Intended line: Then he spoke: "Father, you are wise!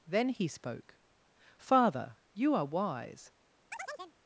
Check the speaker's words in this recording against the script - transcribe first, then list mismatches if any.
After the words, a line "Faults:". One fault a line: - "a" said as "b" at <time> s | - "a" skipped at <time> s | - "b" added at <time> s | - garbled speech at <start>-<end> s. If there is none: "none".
Then he spoke: "Father, you are wise!
Faults:
none